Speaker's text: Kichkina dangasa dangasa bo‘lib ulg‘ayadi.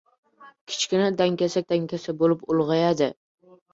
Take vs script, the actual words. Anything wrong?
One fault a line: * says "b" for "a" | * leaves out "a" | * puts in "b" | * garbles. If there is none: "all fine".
all fine